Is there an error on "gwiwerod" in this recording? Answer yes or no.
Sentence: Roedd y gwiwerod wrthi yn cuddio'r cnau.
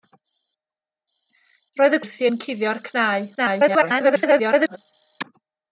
yes